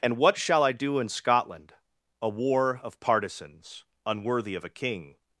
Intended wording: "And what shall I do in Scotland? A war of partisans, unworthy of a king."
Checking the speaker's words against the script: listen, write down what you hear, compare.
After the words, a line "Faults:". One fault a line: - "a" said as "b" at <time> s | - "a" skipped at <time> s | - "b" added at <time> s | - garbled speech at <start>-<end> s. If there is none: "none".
"And what shall I do in Scotland? A war of partisans, unworthy of a king."
Faults:
none